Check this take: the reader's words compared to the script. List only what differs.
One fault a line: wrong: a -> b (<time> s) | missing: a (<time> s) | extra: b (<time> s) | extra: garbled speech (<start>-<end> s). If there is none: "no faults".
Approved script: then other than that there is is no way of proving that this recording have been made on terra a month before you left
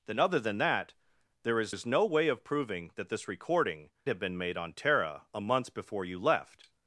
no faults